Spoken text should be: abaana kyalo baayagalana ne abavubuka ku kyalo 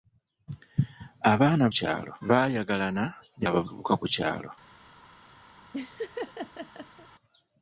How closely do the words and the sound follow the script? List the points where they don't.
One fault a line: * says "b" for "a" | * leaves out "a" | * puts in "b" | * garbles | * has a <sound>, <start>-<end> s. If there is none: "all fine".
* has a laugh, 5.7-7.1 s